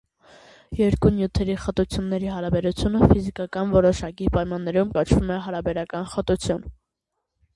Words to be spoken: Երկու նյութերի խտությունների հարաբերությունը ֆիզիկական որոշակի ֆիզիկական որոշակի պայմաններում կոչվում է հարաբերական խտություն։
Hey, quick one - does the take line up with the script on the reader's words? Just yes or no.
no